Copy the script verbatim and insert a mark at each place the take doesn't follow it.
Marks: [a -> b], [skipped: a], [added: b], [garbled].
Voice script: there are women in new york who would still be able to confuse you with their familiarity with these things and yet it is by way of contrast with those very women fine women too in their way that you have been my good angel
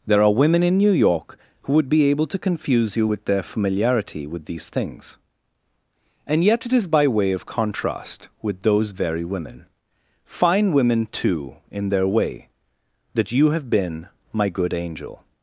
there are women in new york who would [skipped: still] be able to confuse you with their familiarity with these things and yet it is by way of contrast with those very women fine women too in their way that you have been my good angel